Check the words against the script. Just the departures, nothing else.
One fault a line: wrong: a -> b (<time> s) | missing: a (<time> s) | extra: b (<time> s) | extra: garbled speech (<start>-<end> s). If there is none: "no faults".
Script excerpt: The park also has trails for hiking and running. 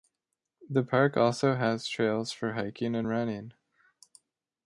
no faults